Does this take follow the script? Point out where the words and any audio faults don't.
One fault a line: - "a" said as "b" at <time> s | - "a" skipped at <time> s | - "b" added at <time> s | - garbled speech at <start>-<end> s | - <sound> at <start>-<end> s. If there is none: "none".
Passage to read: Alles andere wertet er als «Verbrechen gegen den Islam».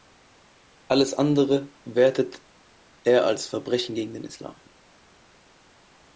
none